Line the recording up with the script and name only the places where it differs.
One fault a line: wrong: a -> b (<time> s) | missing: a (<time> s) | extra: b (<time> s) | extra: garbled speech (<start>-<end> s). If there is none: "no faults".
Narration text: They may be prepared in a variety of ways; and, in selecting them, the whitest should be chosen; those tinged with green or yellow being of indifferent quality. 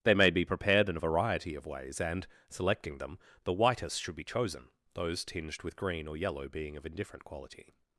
missing: in (2.3 s)